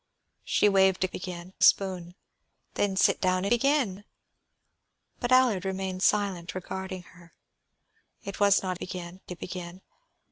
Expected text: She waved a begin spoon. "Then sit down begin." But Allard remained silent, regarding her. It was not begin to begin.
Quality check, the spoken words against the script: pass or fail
pass